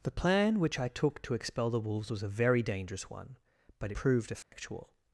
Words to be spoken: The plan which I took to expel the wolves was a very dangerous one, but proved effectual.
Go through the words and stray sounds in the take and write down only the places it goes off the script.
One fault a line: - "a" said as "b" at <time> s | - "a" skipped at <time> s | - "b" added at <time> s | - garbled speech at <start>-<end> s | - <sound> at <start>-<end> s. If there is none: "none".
- dropout at 4.4-4.5 s